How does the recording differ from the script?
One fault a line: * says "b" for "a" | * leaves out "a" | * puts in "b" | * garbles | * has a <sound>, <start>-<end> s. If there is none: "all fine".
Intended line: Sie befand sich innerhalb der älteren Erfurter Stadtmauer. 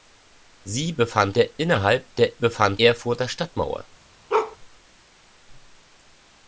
* says "der" for "sich"
* says "befand" for "älteren"
* has a bark, 4.3-4.6 s